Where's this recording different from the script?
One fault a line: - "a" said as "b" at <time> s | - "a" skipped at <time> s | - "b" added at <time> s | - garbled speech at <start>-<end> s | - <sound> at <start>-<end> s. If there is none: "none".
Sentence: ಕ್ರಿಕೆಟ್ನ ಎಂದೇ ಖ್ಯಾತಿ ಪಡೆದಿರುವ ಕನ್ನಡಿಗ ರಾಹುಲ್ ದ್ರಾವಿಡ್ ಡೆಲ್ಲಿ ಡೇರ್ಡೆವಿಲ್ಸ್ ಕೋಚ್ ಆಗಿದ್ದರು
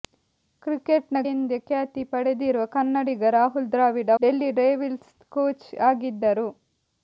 none